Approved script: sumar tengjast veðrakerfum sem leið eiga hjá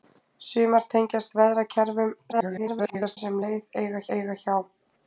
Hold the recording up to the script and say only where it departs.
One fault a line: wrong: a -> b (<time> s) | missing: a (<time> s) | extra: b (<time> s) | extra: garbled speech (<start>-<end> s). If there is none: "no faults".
extra: garbled speech (2.3-3.2 s)
extra: eiga (4.2 s)